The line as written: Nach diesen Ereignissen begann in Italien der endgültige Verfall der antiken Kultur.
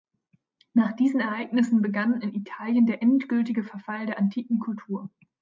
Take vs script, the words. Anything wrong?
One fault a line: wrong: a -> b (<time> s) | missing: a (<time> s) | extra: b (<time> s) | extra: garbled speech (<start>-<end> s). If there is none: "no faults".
no faults